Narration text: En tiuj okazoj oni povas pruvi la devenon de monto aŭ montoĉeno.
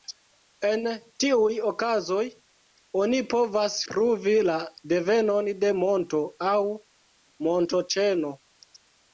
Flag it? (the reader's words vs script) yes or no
no